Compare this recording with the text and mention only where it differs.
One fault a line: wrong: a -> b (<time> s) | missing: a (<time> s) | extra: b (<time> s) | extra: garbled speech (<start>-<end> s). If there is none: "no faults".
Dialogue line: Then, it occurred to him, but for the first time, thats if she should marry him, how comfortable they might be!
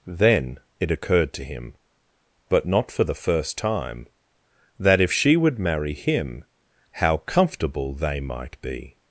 extra: not (2.6 s)
wrong: thats -> that (4.8 s)
wrong: should -> would (5.4 s)